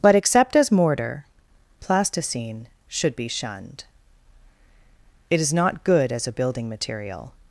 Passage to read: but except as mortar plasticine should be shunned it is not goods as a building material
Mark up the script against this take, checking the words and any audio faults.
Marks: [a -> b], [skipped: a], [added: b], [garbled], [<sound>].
but except as mortar plasticine should be shunned it is not [goods -> good] as a building material